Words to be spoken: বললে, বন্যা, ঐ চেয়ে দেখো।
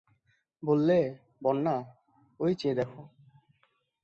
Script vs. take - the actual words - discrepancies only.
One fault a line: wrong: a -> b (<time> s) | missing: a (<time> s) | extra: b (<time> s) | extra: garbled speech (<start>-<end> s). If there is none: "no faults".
no faults